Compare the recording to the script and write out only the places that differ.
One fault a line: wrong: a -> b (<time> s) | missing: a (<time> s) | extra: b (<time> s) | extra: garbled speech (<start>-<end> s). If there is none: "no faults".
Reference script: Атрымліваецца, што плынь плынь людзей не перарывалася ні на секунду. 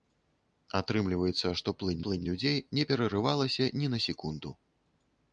no faults